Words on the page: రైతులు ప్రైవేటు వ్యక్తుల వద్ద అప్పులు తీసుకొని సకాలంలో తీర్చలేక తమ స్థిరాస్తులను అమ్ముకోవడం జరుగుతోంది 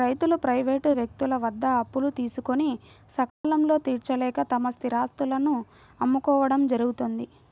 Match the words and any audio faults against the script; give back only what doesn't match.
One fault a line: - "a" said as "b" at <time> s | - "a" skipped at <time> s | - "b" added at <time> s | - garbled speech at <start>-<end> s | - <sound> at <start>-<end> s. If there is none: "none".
- dropout at 3.3-3.4 s